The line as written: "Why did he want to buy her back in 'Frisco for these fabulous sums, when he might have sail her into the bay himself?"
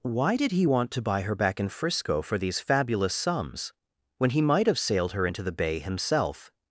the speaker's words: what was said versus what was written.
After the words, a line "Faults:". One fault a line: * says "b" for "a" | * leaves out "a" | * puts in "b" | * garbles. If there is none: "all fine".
"Why did he want to buy her back in 'Frisco for these fabulous sums, when he might have sailed her into the bay himself?"
Faults:
* says "sailed" for "sail"